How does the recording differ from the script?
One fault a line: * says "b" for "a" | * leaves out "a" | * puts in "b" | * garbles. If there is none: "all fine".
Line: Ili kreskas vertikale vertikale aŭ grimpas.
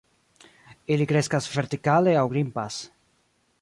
* leaves out "vertikale"